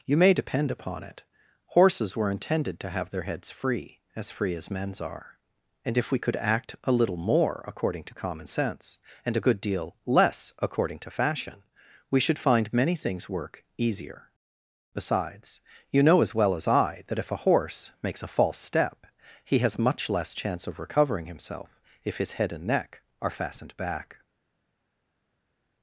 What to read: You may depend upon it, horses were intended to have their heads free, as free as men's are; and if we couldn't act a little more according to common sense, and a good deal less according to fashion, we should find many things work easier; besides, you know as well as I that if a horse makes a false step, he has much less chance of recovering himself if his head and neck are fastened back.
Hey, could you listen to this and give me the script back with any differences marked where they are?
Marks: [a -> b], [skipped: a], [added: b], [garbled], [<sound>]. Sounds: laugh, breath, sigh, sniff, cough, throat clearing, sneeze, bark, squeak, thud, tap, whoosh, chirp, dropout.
You may depend upon it, horses were intended to have their heads free, as free as men's are; and if we [couldn't -> could] act a little more according to common sense, and a good deal less according to fashion, we should find many things work easier; besides, you know as well as I that if a horse makes a false step, he has much less chance of recovering himself if his head and neck are fastened back.